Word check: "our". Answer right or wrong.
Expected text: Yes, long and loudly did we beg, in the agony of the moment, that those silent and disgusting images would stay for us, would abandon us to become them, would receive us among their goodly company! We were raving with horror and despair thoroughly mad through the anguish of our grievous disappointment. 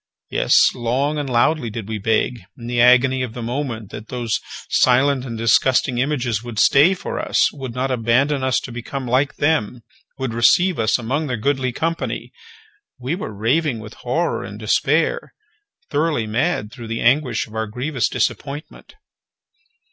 right